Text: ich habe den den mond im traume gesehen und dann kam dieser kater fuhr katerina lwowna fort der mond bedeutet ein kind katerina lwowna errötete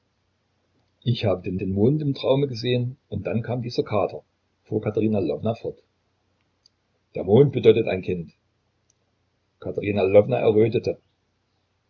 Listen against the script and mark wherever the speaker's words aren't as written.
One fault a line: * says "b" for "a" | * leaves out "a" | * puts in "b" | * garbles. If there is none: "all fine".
all fine